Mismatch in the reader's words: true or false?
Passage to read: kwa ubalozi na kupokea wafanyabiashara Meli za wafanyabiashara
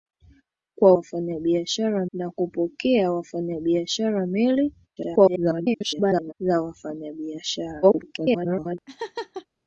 true